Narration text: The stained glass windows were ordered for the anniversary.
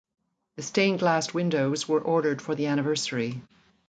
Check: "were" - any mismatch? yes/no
no